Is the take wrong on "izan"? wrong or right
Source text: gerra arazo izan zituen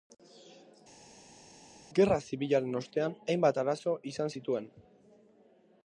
right